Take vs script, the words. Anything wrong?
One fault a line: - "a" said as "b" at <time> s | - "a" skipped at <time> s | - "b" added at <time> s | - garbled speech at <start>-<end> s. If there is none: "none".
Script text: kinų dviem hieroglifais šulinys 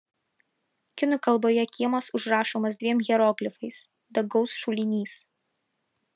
- "kalboje kiemas užrašomas" added at 1.3 s
- "dangaus" added at 4.2 s